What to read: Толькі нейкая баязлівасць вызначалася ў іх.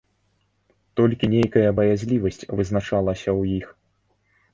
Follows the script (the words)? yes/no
yes